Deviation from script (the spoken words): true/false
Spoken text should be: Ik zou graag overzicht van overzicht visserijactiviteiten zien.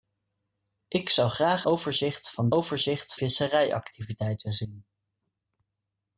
false